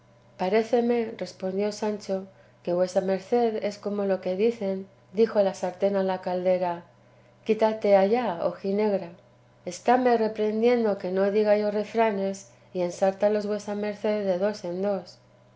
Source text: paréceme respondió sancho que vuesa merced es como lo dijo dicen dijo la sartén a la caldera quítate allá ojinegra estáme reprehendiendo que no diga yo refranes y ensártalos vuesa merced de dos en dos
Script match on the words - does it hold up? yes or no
no